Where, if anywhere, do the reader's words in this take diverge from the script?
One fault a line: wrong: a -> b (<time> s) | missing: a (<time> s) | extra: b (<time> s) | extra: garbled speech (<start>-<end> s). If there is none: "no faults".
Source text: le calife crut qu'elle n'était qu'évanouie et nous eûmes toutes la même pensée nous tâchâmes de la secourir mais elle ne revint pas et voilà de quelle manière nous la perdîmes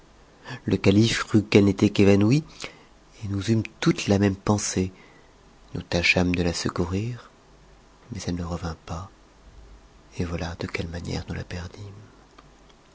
no faults